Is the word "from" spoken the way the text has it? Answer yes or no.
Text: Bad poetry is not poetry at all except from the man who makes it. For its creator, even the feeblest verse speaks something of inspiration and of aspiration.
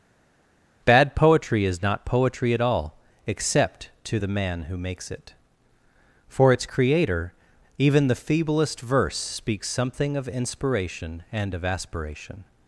no